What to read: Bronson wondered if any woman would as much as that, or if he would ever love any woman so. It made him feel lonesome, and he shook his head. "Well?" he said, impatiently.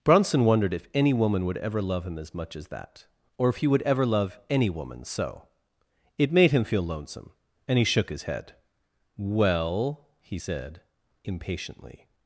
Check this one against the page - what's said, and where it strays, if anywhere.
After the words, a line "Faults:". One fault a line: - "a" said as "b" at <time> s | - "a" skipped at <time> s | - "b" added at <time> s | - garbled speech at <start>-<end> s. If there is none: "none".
Bronson wondered if any woman would ever love him as much as that, or if he would ever love any woman so. It made him feel lonesome, and he shook his head. "Well?" he said, impatiently.
Faults:
- "ever love him" added at 1.6 s